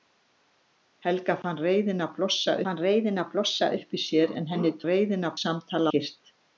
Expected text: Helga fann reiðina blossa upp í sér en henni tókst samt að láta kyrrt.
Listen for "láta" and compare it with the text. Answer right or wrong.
wrong